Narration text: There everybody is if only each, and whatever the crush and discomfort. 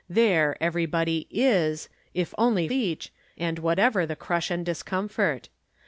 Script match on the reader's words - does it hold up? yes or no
yes